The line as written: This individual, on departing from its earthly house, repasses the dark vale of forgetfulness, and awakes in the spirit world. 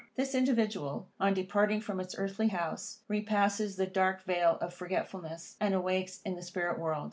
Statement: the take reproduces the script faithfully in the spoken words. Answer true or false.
true